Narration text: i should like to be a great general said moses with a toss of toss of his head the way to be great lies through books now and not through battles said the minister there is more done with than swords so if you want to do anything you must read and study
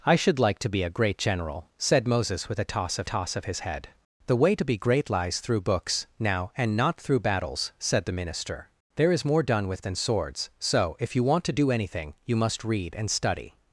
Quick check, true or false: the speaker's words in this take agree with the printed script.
true